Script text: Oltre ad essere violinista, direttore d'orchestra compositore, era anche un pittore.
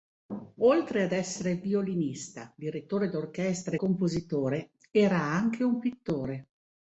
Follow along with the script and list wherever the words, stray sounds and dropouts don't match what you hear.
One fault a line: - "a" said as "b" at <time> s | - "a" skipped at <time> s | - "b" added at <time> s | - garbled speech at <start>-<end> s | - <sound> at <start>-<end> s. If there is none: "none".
none